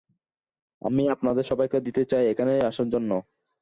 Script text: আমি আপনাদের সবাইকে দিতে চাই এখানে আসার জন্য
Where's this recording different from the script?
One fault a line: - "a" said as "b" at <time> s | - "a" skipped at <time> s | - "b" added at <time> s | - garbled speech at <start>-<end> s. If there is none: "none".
none